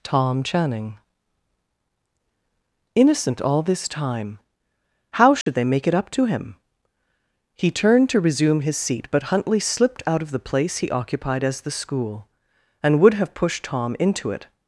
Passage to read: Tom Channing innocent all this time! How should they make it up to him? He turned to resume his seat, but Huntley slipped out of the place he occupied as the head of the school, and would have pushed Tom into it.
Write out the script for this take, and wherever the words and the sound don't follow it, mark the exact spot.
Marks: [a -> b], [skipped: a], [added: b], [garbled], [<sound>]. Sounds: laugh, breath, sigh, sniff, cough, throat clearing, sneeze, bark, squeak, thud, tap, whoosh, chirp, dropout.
Tom Channing innocent all this time! How should [dropout] they make it up to him? He turned to resume his seat, but Huntley slipped out of the place he occupied as the [skipped: head of the] school, and would have pushed Tom into it.